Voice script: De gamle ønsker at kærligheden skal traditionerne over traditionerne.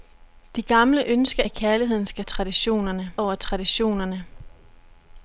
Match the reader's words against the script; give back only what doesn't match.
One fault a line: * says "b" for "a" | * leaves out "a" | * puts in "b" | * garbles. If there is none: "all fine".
all fine